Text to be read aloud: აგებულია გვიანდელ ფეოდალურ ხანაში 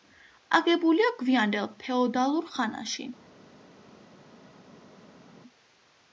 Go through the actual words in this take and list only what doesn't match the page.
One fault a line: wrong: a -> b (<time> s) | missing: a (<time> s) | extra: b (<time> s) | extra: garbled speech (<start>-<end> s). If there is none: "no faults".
no faults